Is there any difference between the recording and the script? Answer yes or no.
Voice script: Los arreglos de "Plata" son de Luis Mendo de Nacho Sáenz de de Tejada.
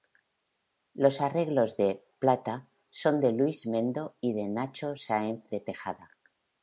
yes